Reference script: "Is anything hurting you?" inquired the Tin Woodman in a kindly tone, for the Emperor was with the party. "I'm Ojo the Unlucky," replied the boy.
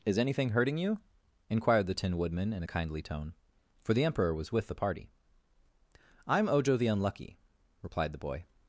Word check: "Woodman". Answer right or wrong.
right